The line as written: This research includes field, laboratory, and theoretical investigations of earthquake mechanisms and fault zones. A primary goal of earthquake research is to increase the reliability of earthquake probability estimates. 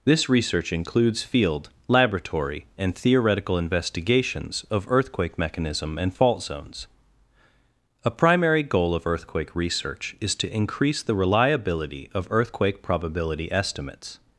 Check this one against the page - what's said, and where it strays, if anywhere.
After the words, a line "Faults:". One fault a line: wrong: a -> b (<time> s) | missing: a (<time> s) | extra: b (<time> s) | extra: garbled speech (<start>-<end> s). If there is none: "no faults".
This research includes field, laboratory, and theoretical investigations of earthquake mechanism and fault zones. A primary goal of earthquake research is to increase the reliability of earthquake probability estimates.
Faults:
wrong: mechanisms -> mechanism (5.4 s)